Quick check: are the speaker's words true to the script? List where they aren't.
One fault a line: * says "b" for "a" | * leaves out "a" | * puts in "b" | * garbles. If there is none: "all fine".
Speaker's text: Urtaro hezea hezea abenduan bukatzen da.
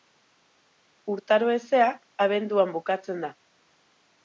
* leaves out "hezea"